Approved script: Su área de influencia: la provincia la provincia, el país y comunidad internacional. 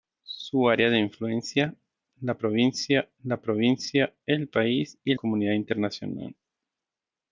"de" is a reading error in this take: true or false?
false